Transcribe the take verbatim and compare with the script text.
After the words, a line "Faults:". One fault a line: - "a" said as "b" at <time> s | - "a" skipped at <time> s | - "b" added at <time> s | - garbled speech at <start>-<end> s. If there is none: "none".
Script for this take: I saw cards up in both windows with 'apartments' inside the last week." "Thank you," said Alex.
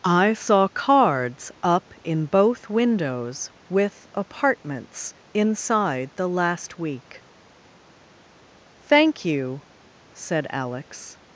I saw cards up in both windows with 'apartments' inside the last week." "Thank you," said Alex.
Faults:
none